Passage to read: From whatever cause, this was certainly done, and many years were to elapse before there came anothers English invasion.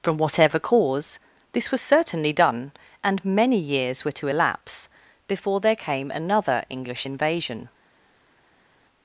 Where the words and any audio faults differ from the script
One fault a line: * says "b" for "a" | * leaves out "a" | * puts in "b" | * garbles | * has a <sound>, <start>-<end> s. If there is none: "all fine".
* says "another" for "anothers"